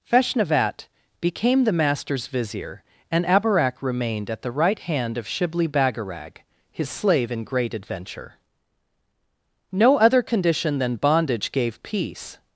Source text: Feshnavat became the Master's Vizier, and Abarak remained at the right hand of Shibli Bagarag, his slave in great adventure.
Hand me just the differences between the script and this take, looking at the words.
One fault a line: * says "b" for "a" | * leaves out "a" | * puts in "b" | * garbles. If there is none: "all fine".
* puts in "No other condition than bondage gave peace"